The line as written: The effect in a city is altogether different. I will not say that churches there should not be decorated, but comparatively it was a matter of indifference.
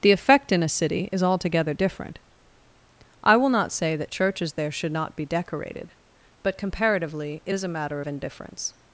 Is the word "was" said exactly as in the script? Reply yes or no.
no